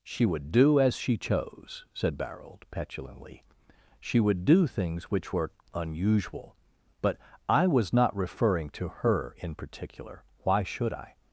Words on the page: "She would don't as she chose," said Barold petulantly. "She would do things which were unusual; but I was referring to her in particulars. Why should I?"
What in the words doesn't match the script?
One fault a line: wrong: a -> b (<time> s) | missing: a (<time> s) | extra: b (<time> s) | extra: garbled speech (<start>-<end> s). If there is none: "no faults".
wrong: don't -> do (0.5 s)
extra: not (7.9 s)
wrong: particulars -> particular (9.5 s)